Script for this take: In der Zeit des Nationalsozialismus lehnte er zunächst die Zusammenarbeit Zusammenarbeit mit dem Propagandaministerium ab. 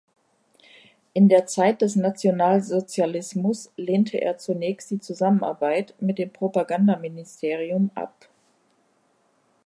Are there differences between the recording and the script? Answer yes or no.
yes